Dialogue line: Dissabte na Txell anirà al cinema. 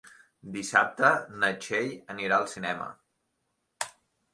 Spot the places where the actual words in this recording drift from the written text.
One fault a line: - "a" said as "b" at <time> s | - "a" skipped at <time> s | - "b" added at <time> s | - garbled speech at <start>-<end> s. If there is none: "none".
none